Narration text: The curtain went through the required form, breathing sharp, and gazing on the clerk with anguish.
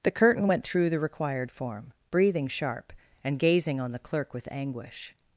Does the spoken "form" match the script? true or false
true